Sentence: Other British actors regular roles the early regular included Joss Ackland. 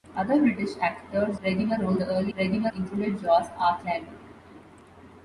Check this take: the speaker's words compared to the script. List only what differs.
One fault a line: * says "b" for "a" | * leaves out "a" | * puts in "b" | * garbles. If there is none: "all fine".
all fine